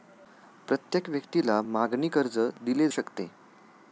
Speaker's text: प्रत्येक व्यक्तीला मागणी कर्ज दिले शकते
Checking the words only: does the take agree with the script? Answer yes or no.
yes